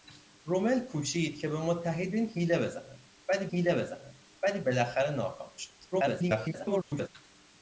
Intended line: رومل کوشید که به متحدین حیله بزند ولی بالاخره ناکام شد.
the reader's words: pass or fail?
fail